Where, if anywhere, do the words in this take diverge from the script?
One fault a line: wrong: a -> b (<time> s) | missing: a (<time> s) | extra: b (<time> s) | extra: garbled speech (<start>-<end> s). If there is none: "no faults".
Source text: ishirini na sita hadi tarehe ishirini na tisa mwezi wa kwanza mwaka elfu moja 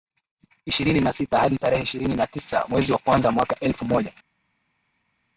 no faults